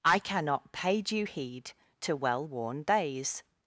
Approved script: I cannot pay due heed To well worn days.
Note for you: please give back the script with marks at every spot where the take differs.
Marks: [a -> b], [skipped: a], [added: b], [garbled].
I cannot pay due heed To well worn days.